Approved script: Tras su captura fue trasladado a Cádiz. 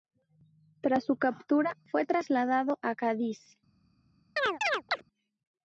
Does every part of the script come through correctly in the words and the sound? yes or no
no